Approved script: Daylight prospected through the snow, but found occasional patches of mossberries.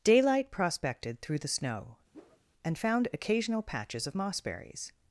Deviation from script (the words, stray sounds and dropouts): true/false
true